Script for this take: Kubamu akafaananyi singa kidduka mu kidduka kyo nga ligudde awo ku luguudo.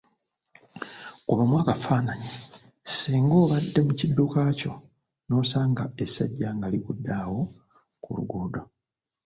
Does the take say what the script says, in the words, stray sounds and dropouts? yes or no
no